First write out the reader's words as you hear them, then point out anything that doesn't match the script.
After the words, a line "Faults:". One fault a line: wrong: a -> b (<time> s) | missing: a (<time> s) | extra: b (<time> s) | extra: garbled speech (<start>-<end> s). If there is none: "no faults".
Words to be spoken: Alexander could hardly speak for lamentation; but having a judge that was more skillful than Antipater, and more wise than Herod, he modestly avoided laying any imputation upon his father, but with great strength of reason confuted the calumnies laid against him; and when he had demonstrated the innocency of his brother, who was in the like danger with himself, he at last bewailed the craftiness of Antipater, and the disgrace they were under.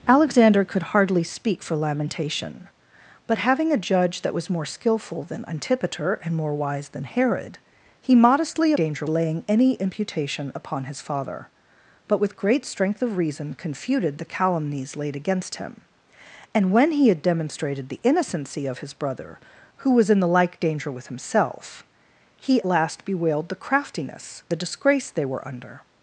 Alexander could hardly speak for lamentation; but having a judge that was more skillful than Antipater, and more wise than Herod, he modestly danger laying any imputation upon his father, but with great strength of reason confuted the calumnies laid against him; and when he had demonstrated the innocency of his brother, who was in the like danger with himself, he last bewailed the craftiness the disgrace they were under.
Faults:
wrong: avoided -> danger (8.8 s)
missing: at (22.6 s)
missing: of Antipater and (24.4 s)